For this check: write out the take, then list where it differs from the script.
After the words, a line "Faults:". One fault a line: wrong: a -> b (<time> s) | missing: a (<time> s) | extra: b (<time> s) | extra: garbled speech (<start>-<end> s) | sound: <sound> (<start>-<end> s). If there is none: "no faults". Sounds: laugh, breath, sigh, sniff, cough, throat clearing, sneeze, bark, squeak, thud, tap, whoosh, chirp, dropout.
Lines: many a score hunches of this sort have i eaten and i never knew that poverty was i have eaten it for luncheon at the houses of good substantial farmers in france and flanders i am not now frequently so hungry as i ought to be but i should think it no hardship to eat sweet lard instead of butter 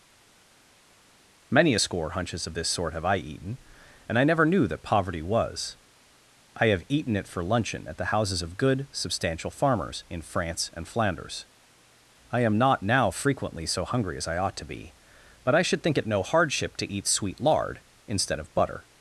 many a score hunches of this sort have i eaten and i never knew that poverty was i have eaten it for luncheon at the houses of good substantial farmers in france and flanders i am not now frequently so hungry as i ought to be but i should think it no hardship to eat sweet lard instead of butter
Faults:
no faults